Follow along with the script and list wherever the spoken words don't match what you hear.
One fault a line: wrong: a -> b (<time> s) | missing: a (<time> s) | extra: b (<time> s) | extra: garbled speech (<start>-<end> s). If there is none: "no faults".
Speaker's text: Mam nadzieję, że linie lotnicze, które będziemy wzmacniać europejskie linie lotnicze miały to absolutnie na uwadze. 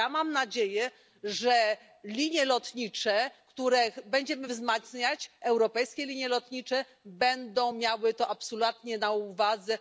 extra: będą (7.0 s)